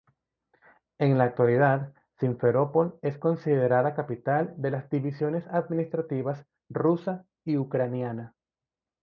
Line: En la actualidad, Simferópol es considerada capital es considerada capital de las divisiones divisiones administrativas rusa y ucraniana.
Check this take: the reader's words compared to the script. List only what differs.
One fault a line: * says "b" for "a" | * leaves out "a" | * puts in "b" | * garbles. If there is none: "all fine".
* leaves out "es considerada capital"
* leaves out "divisiones"